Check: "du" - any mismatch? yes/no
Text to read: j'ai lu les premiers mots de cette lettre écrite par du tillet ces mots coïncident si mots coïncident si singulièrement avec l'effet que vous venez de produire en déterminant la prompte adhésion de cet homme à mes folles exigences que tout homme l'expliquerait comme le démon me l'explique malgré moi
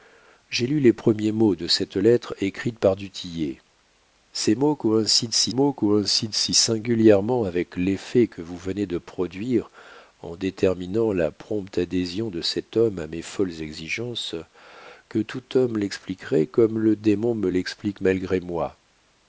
no